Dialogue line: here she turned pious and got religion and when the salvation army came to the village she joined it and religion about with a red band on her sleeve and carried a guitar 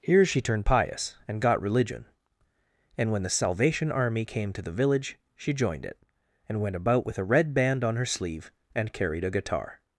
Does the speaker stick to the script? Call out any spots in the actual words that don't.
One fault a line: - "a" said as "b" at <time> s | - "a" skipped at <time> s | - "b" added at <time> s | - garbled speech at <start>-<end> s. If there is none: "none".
- "religion" said as "went" at 6.6 s